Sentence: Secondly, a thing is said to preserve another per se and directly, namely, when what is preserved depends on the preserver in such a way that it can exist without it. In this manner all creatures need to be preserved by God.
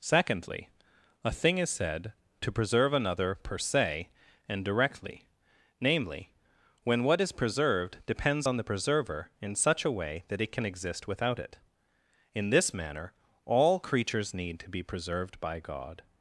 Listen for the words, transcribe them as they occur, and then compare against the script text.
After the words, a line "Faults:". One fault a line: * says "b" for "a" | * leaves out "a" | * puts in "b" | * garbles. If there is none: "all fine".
Secondly, a thing is said to preserve another per se and directly, namely, when what is preserved depends on the preserver in such a way that it can exist without it. In this manner all creatures need to be preserved by God.
Faults:
all fine